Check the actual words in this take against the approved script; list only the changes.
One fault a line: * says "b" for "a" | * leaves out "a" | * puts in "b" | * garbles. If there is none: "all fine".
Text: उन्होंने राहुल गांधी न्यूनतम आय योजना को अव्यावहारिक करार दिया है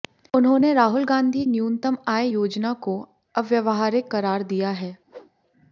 all fine